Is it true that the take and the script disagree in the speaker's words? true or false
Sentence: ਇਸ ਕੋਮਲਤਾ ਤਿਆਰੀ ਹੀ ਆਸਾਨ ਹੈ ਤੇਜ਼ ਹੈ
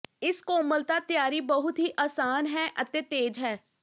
true